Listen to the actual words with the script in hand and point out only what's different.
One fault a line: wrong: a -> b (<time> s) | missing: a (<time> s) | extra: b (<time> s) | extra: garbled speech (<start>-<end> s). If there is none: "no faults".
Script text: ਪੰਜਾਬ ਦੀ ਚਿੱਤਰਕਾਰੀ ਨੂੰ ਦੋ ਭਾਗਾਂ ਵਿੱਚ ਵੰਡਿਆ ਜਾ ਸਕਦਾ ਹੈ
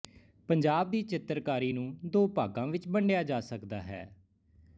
no faults